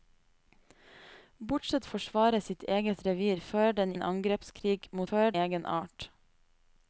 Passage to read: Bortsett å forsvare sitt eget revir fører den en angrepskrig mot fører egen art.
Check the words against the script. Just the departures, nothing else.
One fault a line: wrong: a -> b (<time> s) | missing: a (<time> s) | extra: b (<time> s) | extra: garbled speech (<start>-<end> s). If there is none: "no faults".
no faults